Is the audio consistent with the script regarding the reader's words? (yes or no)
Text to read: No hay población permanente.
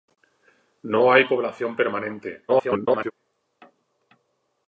no